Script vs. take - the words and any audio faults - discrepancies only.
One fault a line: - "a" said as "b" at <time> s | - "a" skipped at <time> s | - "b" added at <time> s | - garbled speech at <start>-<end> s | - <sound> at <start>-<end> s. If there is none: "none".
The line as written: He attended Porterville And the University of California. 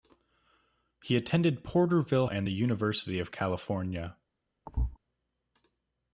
- thud at 4.7-5.0 s